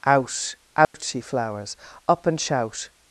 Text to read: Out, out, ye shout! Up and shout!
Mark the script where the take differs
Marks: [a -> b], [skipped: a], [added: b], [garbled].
Out, out, ye [shout! -> flowers] Up and shout!